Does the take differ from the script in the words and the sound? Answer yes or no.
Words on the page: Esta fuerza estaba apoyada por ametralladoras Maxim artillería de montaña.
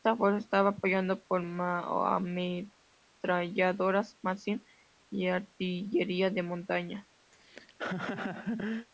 yes